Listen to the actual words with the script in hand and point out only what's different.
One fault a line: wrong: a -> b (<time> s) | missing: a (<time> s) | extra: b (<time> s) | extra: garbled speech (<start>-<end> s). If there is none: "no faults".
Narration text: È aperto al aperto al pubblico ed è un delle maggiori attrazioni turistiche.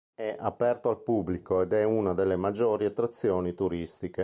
missing: aperto al (1.0 s)
wrong: un -> una (1.8 s)